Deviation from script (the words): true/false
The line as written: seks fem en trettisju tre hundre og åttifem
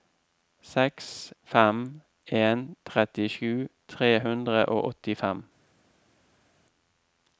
false